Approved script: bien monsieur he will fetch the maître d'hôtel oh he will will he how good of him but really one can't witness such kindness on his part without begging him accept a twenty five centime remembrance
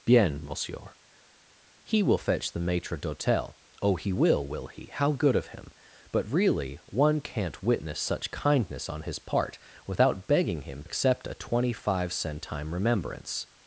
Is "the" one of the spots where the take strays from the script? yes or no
no